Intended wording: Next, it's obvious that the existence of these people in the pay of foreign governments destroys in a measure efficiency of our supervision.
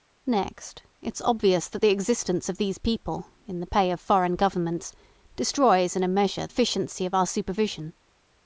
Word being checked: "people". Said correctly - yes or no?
yes